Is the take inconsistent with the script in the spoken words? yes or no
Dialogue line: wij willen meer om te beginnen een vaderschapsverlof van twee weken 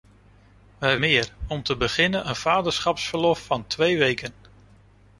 yes